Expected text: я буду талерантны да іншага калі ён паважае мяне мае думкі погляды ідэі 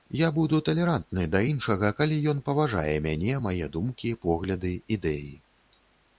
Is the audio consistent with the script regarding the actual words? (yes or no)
yes